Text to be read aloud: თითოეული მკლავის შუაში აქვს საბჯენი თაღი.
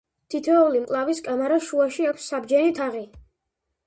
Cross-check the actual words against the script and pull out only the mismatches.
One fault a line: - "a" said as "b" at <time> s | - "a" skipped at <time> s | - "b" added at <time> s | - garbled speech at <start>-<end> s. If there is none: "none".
- "კამარას" added at 1.2 s